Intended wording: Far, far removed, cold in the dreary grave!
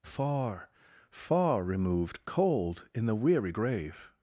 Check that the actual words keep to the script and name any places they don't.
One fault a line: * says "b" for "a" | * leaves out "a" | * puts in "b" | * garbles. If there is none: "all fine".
* says "weary" for "dreary"